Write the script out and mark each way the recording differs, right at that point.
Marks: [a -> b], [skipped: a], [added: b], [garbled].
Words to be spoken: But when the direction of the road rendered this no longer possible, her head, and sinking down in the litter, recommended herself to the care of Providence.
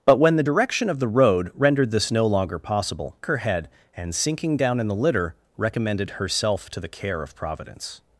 But when the direction of the road rendered this no longer possible, her head, and sinking down in the litter, recommended herself to the care of Providence.